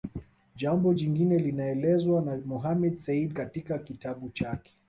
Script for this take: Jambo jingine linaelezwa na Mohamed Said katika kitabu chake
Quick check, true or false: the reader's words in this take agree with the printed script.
true